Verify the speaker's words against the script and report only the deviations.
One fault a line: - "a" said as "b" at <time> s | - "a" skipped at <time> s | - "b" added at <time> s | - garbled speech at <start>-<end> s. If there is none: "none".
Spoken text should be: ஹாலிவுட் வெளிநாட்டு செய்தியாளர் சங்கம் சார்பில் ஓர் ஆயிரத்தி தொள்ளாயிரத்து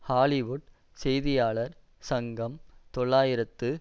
- "வெளிநாட்டு" skipped at 0.7 s
- "சார்பில் ஓர் ஆயிரத்தி" skipped at 2.6 s